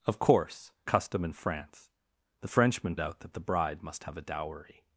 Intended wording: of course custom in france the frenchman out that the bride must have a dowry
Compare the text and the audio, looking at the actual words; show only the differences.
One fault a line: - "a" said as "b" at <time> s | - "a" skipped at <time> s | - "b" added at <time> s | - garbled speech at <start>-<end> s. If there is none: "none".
none